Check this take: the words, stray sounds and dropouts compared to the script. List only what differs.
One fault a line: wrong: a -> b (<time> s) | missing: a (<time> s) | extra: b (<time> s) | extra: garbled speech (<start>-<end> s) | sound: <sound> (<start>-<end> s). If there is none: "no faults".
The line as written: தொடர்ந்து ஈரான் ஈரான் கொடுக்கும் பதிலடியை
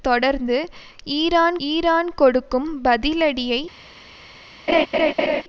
sound: laugh (4.7-5.4 s)